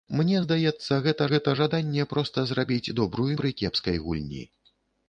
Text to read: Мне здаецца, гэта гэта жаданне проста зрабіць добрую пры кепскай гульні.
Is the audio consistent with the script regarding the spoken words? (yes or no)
yes